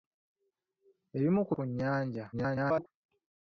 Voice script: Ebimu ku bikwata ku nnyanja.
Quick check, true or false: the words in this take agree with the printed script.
false